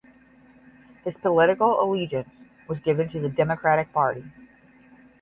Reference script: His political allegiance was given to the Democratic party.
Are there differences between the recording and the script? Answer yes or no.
no